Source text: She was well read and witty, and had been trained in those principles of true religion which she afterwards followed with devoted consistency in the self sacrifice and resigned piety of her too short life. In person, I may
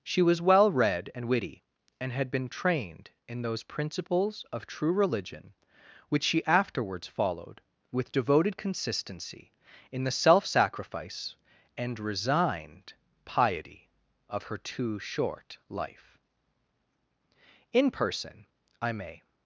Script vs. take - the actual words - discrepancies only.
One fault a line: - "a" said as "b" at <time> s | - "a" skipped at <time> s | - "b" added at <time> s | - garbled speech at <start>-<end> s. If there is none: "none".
none